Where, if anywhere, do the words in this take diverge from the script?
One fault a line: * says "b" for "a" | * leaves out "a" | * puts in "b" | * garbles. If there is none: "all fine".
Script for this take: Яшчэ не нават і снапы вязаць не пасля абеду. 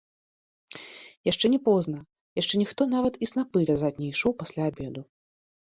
* puts in "позна яшчэ ніхто"
* puts in "ішоў"